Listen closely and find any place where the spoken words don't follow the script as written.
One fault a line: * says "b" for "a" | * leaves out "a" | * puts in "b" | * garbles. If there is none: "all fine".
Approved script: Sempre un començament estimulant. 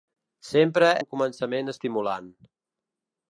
all fine